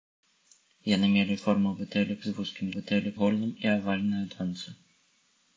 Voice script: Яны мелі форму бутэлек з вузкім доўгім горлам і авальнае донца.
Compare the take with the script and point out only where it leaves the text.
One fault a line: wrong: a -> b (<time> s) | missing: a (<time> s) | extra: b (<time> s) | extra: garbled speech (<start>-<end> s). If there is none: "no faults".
wrong: доўгім -> бутэлек (2.8 s)